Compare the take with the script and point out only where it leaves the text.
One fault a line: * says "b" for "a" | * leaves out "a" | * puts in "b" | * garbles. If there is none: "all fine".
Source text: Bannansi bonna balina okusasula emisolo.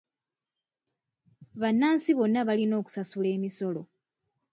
all fine